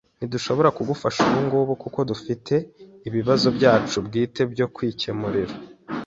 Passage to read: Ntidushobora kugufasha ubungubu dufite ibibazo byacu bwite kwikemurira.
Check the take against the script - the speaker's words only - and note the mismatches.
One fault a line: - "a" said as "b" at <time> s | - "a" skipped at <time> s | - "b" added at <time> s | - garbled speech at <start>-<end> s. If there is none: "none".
- "kuko" added at 1.8 s
- "byo" added at 4.5 s